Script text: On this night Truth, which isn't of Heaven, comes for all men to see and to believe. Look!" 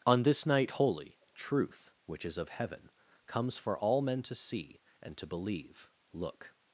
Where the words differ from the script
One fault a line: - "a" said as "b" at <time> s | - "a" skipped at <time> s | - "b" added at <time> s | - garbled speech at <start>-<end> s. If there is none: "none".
- "holy" added at 0.7 s
- "isn't" said as "is" at 2.2 s